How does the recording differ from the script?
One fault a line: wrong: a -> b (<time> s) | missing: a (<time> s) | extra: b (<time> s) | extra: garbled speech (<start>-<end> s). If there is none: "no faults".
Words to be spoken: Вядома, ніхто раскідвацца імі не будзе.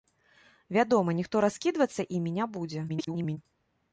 extra: garbled speech (2.9-3.4 s)